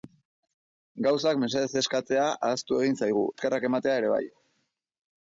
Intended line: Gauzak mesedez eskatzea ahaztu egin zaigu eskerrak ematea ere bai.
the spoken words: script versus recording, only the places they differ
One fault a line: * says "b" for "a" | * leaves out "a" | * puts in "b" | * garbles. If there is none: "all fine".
all fine